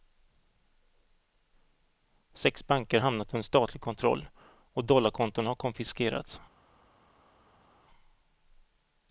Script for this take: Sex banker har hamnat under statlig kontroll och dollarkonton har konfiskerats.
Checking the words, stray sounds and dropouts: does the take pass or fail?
pass